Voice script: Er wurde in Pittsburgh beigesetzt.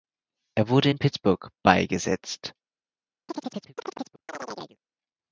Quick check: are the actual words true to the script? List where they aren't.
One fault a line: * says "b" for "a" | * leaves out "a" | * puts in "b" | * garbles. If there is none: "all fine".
all fine